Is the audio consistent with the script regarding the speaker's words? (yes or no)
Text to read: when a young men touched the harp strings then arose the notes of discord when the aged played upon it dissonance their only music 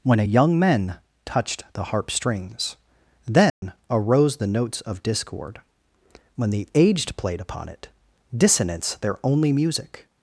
yes